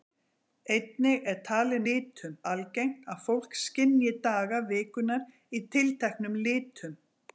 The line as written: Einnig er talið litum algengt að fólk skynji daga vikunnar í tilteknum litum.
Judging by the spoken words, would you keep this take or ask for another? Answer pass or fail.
pass